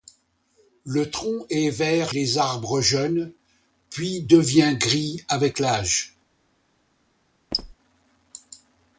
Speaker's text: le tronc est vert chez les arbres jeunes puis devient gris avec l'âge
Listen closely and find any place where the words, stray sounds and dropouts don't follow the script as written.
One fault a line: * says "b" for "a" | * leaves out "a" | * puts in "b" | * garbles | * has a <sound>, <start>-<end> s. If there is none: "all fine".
* leaves out "chez"
* has a squeak, 7.5-7.8 s